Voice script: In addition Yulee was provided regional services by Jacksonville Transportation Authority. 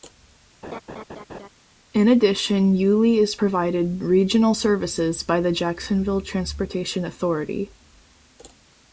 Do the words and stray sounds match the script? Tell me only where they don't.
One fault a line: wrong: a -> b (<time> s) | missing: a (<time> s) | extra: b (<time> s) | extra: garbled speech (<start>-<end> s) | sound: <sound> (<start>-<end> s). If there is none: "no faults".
sound: laugh (0.6-1.5 s)
wrong: was -> is (3.2 s)
extra: the (5.4 s)